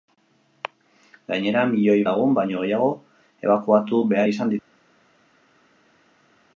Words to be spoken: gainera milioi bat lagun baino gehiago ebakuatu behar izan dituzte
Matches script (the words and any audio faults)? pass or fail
fail